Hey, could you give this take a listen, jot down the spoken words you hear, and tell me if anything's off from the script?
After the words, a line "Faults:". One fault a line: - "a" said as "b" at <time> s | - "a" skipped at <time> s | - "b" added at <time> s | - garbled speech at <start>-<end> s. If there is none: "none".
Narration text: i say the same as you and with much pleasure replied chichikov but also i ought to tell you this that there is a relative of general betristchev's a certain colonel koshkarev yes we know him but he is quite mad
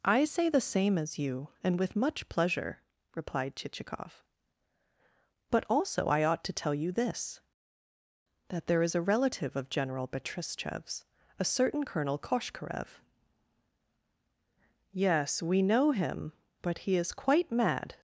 i say the same as you and with much pleasure replied chichikov but also i ought to tell you this that there is a relative of general betristchev's a certain colonel koshkarev yes we know him but he is quite mad
Faults:
none